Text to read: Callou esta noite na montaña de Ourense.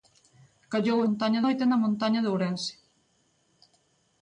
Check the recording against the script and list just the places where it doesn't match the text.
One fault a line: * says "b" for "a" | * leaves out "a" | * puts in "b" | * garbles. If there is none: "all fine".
* says "montaña" for "esta"